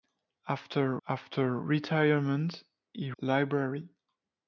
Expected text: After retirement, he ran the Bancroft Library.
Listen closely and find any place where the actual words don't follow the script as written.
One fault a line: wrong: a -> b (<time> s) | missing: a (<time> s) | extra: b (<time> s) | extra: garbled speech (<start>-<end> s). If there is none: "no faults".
extra: after (1.1 s)
missing: ran the Bancroft (3.1 s)